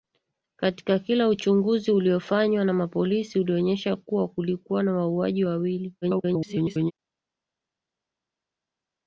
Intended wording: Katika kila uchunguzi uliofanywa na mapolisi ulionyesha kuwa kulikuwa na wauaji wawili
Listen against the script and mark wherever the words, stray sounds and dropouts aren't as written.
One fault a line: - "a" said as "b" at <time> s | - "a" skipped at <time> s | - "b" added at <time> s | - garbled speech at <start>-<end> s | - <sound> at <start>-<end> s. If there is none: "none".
- garbled speech at 6.0-6.9 s